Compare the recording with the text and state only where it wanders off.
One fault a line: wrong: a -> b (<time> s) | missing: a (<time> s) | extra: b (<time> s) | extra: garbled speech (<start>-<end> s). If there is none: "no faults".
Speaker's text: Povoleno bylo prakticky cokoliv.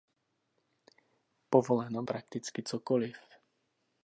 missing: bylo (2.0 s)